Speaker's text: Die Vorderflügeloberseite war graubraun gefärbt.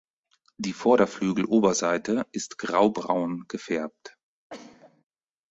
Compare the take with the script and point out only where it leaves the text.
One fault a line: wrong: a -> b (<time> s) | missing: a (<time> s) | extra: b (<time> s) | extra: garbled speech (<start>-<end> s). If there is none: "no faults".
wrong: war -> ist (2.3 s)